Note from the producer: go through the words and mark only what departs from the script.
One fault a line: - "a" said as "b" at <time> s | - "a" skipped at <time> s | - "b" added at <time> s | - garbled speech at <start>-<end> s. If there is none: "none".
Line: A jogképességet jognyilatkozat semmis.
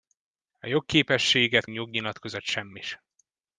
none